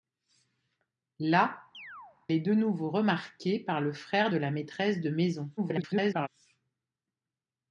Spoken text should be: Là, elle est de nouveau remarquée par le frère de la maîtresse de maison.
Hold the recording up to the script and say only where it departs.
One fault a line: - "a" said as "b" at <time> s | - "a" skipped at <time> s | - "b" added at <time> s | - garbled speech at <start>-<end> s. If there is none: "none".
- "elle" skipped at 1.6 s
- garbled speech at 5.6-6.3 s